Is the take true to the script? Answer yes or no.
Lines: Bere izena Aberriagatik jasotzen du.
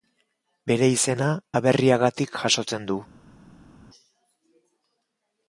yes